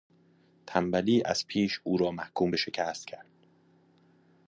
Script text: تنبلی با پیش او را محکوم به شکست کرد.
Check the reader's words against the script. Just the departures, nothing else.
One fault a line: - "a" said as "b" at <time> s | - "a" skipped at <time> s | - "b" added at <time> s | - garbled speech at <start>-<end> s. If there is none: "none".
- "با" said as "از" at 1.2 s